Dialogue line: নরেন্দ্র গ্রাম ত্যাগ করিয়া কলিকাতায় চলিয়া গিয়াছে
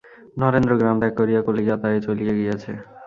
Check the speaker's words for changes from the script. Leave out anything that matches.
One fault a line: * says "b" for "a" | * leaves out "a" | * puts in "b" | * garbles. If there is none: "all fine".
all fine